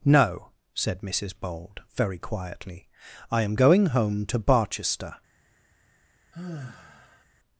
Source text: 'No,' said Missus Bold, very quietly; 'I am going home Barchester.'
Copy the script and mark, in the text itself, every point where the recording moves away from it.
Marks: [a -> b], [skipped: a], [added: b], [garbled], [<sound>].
'No,' said Missus Bold, very quietly; 'I am going home [added: to] Barchester.' [sigh]